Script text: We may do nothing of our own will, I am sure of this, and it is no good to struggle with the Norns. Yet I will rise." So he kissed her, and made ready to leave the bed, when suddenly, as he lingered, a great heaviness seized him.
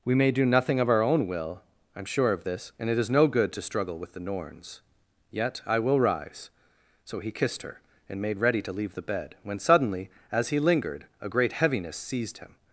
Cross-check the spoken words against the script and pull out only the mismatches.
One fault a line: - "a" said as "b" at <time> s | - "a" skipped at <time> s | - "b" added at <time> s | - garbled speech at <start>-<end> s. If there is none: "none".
none